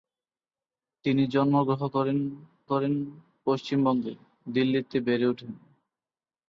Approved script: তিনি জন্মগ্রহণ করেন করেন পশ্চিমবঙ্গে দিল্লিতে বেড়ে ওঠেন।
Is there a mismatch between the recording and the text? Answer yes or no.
no